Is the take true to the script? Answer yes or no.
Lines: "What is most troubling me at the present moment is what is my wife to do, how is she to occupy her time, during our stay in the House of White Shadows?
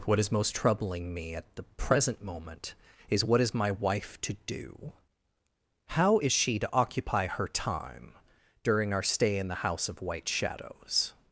yes